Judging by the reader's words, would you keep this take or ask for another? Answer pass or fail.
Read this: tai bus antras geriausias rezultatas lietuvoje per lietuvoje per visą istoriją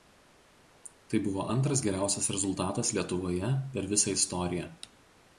fail